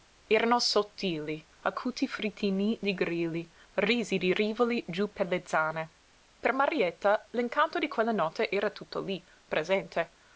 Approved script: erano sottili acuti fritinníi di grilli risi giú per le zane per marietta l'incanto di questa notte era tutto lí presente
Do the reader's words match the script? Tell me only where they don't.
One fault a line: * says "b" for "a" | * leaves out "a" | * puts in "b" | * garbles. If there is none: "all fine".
* puts in "di rivoli"
* says "quella" for "questa"